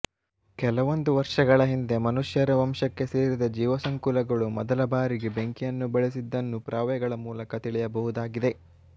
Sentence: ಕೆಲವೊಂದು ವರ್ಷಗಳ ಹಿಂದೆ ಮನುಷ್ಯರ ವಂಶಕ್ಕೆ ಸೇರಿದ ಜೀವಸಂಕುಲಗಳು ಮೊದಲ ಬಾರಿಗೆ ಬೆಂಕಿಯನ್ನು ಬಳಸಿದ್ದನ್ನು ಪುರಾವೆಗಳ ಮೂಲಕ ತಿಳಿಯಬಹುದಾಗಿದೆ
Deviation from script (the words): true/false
false